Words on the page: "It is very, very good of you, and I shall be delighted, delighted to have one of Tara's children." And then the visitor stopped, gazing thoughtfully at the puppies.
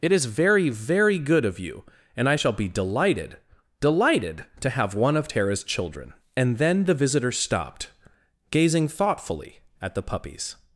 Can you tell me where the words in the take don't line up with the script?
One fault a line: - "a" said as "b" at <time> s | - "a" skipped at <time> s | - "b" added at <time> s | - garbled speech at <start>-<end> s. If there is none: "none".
none